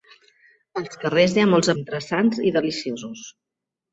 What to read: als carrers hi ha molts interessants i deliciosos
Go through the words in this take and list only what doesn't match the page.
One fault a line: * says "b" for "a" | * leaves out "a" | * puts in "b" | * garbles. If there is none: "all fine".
all fine